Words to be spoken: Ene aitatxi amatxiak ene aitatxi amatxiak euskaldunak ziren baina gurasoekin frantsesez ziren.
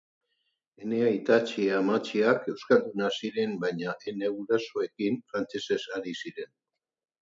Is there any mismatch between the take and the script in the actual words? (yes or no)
yes